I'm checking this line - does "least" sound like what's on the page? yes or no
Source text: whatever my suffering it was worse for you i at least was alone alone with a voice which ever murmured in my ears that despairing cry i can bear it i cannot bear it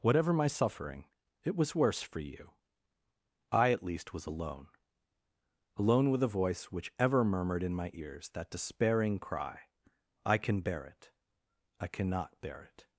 yes